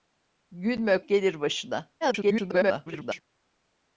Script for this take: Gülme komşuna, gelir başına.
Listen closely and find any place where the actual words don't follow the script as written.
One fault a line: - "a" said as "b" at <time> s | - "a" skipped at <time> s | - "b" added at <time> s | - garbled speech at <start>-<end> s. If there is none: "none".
- "komşuna" skipped at 1.0 s
- garbled speech at 2.0-3.2 s